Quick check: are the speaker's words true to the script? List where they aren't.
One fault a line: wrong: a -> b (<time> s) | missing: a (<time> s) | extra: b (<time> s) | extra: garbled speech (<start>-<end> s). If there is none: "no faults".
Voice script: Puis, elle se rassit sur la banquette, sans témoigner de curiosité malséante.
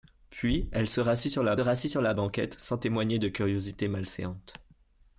extra: rassit sur la (1.6 s)